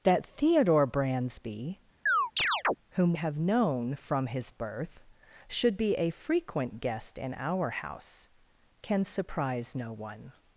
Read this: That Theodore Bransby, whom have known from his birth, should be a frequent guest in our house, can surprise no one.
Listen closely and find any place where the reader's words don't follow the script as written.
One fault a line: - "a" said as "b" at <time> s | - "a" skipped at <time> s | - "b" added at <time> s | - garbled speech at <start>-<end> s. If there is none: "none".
none